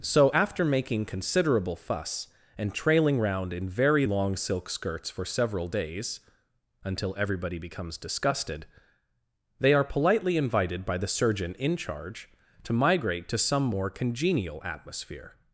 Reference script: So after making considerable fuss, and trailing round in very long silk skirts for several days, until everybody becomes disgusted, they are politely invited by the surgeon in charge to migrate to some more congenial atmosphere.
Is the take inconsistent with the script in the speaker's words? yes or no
no